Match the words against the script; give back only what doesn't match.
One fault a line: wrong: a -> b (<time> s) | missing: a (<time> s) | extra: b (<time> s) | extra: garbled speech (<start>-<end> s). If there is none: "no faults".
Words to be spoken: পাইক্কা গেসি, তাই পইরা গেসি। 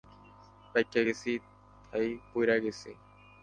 no faults